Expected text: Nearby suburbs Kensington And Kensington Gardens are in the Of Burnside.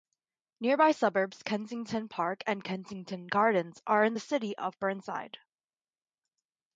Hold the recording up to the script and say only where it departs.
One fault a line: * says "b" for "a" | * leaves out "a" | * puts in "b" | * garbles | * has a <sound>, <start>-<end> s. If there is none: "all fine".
* puts in "Park"
* puts in "City"